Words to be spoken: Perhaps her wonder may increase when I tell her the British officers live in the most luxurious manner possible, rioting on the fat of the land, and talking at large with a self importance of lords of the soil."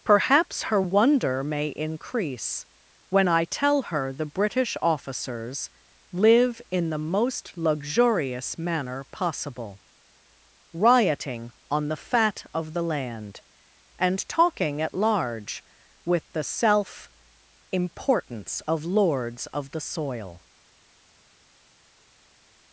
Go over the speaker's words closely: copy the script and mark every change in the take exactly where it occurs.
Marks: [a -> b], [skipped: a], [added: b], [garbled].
Perhaps her wonder may increase when I tell her the British officers live in the most luxurious manner possible, rioting on the fat of the land, and talking at large with [a -> the] self importance of lords of the soil."